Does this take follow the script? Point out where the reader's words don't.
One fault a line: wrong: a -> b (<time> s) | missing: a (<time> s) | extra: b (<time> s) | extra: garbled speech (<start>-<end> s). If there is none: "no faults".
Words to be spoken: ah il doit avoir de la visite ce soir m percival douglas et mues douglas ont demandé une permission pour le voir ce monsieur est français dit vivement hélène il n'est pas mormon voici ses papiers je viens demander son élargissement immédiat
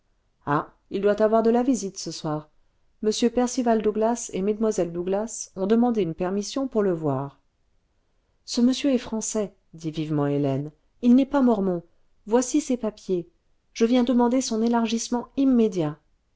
no faults